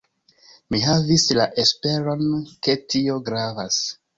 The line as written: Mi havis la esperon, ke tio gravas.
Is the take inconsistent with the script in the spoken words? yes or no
no